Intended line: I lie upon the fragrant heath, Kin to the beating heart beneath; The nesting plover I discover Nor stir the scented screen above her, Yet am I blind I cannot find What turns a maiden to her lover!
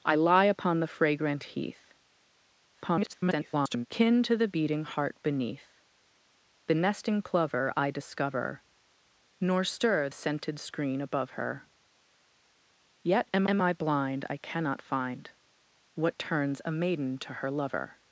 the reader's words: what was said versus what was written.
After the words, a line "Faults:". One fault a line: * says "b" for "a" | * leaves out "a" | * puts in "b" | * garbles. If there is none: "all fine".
I lie upon the fragrant heath, [garbled] Kin to the beating heart beneath; The nesting plover I discover Nor stir scented screen above her, Yet am am I blind I cannot find What turns a maiden to her lover!
Faults:
* garbles
* leaves out "the"
* puts in "am"